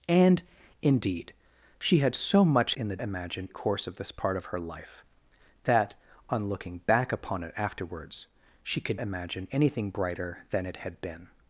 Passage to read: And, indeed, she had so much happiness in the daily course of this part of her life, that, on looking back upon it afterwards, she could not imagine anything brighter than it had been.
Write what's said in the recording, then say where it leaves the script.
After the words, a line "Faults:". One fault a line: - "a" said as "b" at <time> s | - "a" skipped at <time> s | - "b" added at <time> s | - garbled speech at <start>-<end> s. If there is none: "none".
And, indeed, she had so much in the imagine course of this part of her life, that, on looking back upon it afterwards, she could imagine anything brighter than it had been.
Faults:
- "happiness" skipped at 2.8 s
- "daily" said as "imagine" at 3.0 s
- "not" skipped at 9.0 s